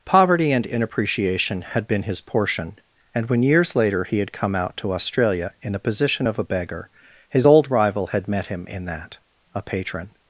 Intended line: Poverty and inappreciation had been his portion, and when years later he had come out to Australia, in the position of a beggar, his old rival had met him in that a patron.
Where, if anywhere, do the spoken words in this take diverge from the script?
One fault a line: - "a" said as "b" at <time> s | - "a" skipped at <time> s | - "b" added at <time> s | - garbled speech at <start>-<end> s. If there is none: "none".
none